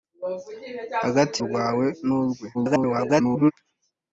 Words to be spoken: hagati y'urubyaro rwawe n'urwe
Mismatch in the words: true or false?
true